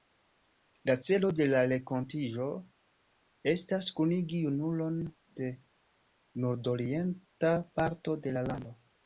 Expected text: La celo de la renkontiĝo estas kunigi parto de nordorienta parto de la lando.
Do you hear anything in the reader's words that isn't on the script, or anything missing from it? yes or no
yes